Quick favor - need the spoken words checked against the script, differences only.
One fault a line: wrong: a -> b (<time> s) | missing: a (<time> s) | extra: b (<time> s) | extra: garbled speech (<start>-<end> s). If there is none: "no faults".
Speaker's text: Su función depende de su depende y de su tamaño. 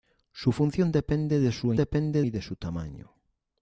no faults